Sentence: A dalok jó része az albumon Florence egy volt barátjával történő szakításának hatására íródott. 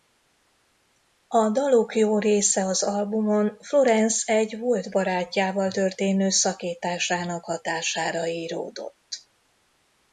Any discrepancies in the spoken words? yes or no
no